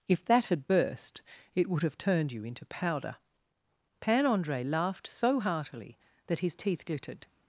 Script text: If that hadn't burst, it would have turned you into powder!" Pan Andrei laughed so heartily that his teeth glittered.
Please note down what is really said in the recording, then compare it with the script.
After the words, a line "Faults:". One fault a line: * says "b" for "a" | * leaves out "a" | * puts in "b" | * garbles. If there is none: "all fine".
If that had burst, it would have turned you into powder!" Pan Andrei laughed so heartily that his teeth glittered.
Faults:
* says "had" for "hadn't"